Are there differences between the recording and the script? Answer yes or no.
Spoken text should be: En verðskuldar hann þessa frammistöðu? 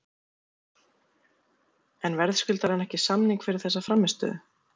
yes